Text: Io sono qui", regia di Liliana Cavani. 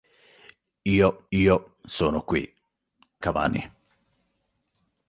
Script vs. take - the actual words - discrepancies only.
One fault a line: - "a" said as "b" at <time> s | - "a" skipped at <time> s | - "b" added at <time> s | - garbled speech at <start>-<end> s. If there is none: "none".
- "io" added at 1.3 s
- "regia di Liliana" skipped at 2.5 s